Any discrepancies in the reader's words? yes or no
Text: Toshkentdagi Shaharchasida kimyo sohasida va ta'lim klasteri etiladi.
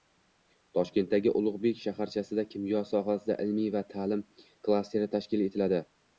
yes